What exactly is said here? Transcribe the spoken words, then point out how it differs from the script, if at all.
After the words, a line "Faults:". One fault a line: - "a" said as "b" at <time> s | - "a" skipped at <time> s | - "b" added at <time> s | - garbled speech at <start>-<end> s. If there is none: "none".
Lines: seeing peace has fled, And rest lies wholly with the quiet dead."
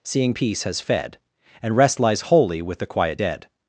seeing peace has fed, And rest lies wholly with the quiet dead."
Faults:
- "fled" said as "fed" at 0.8 s